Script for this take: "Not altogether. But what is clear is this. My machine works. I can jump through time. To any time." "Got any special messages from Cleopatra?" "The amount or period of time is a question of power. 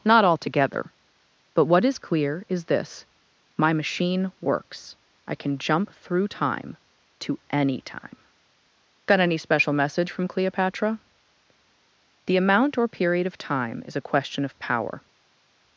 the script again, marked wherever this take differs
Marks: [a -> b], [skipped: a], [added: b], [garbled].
"Not altogether. But what is clear is this. My machine works. I can jump through time. To any time." "Got any special [messages -> message] from Cleopatra?" "The amount or period of time is a question of power.